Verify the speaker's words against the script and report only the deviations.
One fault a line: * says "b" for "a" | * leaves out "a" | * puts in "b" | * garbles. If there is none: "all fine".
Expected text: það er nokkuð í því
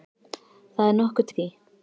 all fine